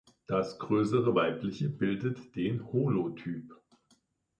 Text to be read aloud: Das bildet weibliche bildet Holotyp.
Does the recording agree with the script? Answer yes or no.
no